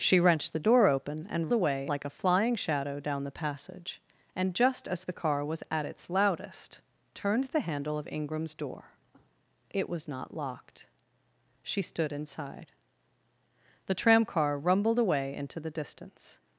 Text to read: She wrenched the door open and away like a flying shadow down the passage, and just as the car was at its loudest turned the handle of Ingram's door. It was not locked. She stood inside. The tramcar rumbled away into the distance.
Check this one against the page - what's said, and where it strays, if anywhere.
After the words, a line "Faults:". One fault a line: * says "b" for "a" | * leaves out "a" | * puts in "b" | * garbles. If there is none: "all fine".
She wrenched the door open and away like a flying shadow down the passage, and just as the car was at its loudest turned the handle of Ingram's door. It was not locked. She stood inside. The tramcar rumbled away into the distance.
Faults:
all fine